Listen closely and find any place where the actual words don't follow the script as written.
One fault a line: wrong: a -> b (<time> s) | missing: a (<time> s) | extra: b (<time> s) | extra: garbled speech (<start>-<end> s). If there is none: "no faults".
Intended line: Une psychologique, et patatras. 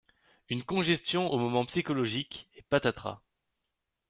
extra: congestion au moment (0.6 s)